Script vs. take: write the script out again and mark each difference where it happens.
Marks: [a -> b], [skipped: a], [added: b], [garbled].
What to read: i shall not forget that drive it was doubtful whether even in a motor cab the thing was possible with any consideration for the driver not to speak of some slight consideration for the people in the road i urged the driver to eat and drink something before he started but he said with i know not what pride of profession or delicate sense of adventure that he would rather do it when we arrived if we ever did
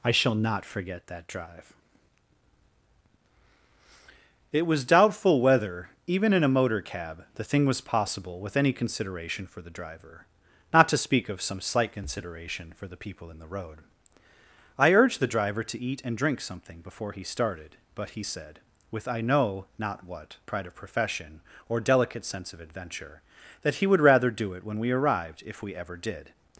i shall not forget that drive it was doubtful whether even in a motor cab the thing was possible with any consideration for the driver not to speak of some slight consideration for the people in the road i urged the driver to eat and drink something before he started but he said with i know not what pride of profession or delicate sense of adventure that he would rather do it when we arrived if we ever did